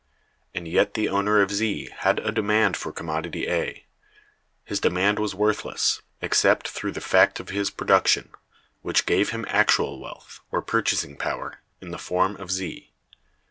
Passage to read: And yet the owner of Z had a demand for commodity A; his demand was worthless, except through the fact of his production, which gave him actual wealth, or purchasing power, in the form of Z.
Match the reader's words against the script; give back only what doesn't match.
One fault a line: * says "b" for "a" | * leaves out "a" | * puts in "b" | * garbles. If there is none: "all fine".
all fine